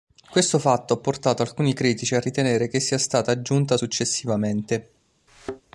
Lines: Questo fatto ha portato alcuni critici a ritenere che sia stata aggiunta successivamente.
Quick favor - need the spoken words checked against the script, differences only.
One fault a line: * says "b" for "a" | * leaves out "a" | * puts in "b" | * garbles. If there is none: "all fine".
all fine